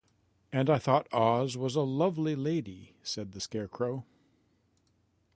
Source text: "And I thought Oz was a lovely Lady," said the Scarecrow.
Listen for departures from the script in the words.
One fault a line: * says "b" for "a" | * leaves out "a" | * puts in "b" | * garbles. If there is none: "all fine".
all fine